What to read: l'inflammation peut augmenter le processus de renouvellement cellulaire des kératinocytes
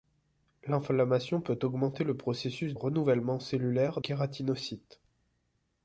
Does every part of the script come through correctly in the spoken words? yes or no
no